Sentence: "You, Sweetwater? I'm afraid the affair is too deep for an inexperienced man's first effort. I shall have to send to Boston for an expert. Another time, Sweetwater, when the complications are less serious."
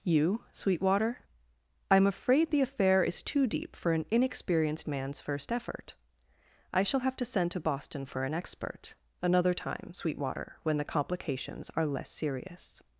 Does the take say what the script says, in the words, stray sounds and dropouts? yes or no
yes